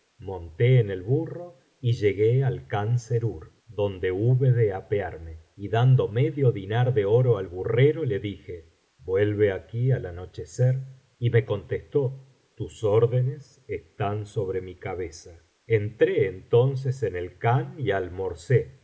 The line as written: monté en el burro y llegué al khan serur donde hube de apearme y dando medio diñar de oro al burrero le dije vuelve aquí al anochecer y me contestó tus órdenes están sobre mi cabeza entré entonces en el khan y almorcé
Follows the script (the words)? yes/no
yes